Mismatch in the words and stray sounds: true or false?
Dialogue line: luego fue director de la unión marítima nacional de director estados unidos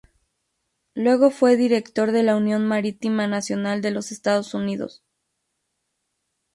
true